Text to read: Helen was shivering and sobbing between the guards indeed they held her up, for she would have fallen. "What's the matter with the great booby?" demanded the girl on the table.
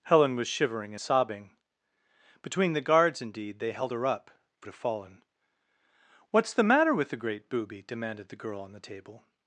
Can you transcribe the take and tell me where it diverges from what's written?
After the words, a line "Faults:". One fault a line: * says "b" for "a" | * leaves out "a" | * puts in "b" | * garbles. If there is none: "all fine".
Helen was shivering sobbing between the guards indeed they held her up, for have fallen. "What's the matter with the great booby?" demanded the girl on the table.
Faults:
* leaves out "and"
* leaves out "she would"